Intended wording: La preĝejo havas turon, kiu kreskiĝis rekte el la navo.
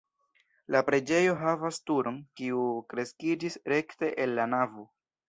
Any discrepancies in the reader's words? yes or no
no